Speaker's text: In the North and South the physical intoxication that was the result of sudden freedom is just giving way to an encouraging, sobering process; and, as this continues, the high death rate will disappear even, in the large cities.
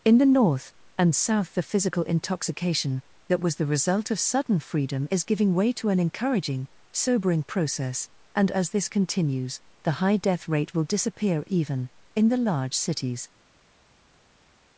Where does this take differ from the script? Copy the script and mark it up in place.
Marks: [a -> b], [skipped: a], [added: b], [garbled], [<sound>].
In the North and South the physical intoxication that was the result of sudden freedom is [skipped: just] giving way to an encouraging, sobering process; and, as this continues, the high death rate will disappear even, in the large cities.